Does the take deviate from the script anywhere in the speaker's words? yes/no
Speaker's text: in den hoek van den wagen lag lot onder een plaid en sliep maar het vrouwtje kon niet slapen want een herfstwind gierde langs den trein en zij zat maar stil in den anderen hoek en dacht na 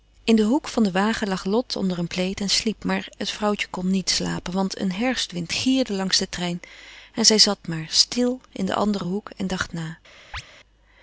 no